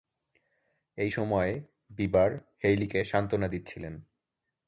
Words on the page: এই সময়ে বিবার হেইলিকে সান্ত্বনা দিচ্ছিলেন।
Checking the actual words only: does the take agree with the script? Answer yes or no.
yes